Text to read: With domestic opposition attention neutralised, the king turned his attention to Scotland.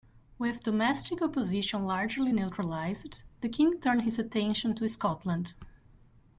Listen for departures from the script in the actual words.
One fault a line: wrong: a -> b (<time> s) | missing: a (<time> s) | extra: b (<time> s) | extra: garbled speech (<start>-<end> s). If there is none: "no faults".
wrong: attention -> largely (1.9 s)